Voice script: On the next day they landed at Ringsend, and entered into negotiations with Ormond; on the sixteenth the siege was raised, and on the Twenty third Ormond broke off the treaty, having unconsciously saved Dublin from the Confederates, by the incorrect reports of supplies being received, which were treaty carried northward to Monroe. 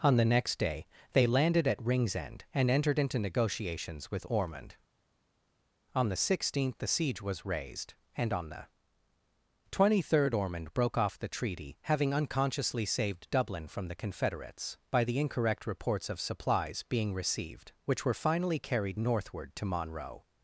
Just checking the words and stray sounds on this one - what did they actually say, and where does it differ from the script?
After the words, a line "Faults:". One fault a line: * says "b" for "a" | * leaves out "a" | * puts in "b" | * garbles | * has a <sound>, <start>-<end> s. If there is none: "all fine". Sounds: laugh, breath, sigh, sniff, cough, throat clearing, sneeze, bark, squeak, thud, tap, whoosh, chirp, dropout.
On the next day they landed at Ringsend, and entered into negotiations with Ormond; on the sixteenth the siege was raised, and on the Twenty third Ormond broke off the treaty, having unconsciously saved Dublin from the Confederates, by the incorrect reports of supplies being received, which were finally carried northward to Monroe.
Faults:
* says "finally" for "treaty"